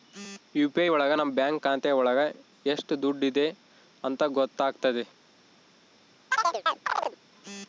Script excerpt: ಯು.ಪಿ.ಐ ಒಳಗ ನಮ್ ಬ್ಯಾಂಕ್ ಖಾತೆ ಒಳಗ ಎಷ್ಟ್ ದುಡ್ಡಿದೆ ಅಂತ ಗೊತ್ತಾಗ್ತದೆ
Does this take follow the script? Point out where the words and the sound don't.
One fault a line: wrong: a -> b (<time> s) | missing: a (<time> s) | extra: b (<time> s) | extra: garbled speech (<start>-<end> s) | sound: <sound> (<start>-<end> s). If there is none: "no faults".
sound: chirp (6.3-7.2 s)